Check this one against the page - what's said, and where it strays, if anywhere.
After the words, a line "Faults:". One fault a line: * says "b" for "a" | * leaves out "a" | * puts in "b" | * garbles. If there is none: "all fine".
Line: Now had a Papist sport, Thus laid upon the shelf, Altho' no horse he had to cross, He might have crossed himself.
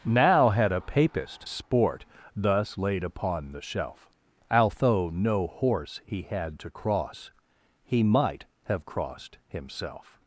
Now had a Papist sport, Thus laid upon the shelf, Altho' no horse he had to cross, He might have crossed himself.
Faults:
all fine